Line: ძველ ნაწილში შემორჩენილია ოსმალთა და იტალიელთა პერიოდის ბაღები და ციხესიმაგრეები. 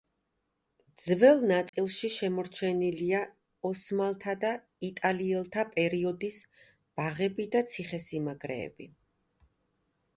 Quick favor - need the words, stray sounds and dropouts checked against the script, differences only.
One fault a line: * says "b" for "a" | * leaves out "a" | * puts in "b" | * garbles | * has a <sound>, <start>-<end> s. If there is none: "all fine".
* has a dropout, 1.7-1.7 s